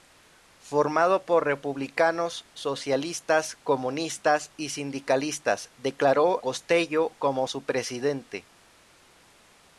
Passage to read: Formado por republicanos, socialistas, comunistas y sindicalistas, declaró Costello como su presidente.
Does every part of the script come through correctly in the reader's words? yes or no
yes